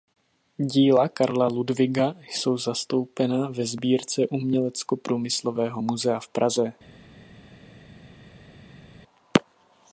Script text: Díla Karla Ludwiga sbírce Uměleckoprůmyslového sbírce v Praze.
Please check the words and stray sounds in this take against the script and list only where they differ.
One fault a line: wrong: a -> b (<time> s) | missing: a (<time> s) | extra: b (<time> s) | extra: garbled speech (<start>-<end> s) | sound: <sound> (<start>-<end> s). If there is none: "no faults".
extra: jsou zastoupena ve (2.3 s)
wrong: sbírce -> muzea (5.8 s)